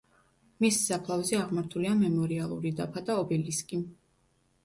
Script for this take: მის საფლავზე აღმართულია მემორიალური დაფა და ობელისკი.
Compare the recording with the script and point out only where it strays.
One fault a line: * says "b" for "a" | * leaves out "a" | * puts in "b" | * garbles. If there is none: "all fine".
all fine